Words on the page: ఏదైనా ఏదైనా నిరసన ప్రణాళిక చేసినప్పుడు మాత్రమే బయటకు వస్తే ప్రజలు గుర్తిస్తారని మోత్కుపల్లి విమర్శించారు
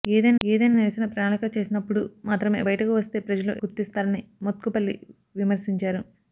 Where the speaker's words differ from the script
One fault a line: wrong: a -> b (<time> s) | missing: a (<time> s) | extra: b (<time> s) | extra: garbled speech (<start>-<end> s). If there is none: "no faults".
no faults